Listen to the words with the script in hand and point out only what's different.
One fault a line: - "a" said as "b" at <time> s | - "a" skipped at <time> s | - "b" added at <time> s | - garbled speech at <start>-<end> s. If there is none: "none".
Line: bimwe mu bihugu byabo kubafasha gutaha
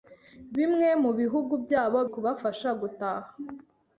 none